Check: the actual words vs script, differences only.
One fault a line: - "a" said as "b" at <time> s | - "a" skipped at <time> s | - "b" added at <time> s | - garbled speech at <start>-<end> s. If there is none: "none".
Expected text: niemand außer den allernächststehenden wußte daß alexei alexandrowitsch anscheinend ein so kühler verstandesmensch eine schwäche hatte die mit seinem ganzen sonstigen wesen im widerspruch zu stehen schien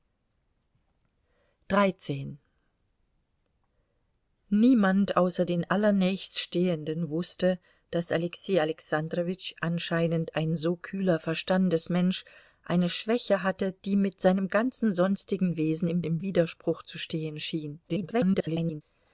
- "im" added at 16.0 s
- garbled speech at 17.9-18.8 s